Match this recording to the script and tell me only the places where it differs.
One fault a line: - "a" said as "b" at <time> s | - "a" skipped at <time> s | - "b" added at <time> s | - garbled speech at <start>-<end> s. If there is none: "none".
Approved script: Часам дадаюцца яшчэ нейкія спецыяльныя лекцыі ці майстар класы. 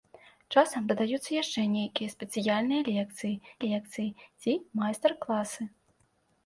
- "лекцыі" added at 3.7 s